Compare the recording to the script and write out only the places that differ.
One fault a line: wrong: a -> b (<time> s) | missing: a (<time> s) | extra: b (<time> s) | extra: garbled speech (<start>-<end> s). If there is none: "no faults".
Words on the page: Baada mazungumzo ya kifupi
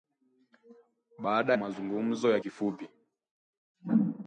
no faults